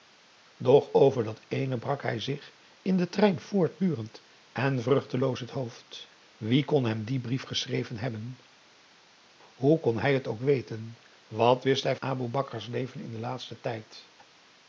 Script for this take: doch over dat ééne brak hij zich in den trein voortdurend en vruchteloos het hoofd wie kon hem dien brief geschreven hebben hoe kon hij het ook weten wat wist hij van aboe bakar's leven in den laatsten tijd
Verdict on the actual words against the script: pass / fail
fail